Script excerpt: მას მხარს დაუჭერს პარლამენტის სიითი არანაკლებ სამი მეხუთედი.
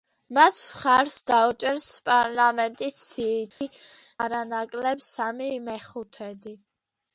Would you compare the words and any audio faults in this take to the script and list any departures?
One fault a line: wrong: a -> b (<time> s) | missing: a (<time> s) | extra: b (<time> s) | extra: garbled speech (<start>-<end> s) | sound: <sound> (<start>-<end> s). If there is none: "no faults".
sound: dropout (3.5-3.6 s)